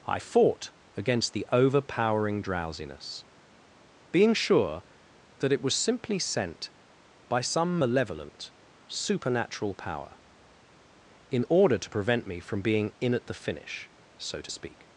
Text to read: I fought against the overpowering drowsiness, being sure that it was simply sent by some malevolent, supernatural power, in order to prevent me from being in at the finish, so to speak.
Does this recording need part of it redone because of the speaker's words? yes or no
no